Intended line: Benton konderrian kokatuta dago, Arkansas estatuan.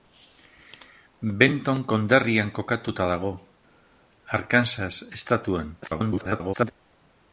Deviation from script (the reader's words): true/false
true